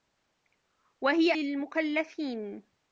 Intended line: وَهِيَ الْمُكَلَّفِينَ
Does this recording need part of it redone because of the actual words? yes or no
no